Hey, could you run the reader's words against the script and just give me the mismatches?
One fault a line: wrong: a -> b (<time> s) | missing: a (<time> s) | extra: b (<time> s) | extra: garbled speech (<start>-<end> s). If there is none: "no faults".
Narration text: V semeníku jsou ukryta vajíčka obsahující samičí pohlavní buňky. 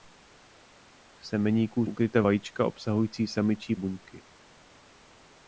missing: jsou (1.9 s)
missing: pohlavní (3.7 s)